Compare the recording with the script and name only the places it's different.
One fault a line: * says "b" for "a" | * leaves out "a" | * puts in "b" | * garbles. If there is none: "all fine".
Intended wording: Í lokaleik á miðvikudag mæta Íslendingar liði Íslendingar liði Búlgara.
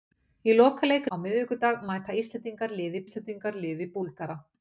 all fine